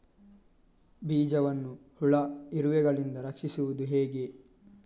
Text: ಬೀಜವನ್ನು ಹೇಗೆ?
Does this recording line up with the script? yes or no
no